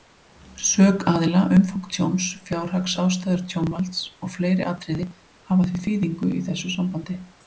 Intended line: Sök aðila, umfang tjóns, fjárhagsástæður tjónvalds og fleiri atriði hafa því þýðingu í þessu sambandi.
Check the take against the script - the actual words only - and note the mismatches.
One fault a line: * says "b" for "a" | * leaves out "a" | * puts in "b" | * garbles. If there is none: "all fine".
all fine